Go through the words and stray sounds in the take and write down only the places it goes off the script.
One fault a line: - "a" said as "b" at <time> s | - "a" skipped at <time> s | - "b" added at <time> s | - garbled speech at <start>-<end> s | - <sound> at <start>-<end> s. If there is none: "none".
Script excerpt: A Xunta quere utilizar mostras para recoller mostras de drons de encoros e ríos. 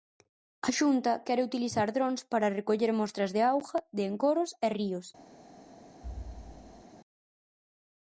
- "mostras" said as "drons" at 1.9 s
- "drons" said as "auga" at 3.5 s
- thud at 6.0-6.8 s